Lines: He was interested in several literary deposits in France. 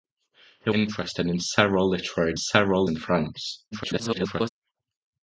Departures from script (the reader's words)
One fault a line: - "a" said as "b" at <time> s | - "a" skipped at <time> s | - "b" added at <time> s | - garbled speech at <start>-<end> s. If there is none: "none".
- "was" skipped at 0.7 s
- "deposits" said as "several" at 2.3 s
- garbled speech at 3.7-4.5 s